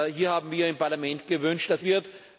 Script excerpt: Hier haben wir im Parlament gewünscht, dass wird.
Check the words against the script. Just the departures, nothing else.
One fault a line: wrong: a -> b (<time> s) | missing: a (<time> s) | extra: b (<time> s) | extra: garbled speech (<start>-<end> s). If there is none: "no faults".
no faults